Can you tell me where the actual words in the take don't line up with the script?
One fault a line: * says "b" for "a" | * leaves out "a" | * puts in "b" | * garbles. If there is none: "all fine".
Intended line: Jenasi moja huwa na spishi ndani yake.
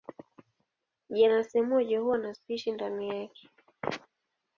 all fine